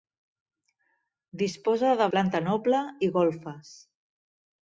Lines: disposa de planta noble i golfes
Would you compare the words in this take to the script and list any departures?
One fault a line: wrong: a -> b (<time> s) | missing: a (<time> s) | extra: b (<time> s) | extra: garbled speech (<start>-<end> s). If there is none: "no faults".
no faults